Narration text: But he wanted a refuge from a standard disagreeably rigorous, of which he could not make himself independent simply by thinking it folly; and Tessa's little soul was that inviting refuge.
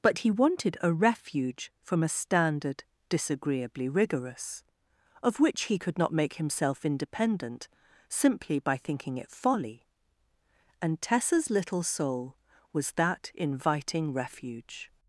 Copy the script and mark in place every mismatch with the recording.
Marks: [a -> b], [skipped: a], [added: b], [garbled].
But he wanted a refuge from a standard disagreeably rigorous, of which he could not make himself independent simply by thinking it folly; and Tessa's little soul was that inviting refuge.